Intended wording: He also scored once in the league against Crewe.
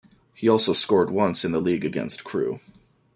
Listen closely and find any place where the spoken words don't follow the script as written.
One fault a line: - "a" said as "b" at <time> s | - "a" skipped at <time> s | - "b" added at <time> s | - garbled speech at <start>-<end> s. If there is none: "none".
none